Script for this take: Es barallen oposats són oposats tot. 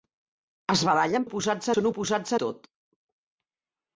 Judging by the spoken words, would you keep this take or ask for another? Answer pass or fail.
pass